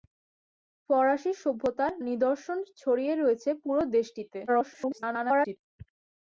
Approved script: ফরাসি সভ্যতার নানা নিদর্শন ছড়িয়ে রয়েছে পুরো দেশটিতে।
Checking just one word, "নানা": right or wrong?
wrong